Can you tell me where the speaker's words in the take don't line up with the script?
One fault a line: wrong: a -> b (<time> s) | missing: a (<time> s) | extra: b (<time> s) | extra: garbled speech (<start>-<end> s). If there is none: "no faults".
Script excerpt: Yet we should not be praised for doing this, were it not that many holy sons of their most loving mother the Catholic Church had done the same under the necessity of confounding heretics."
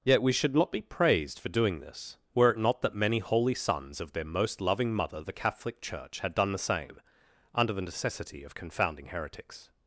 no faults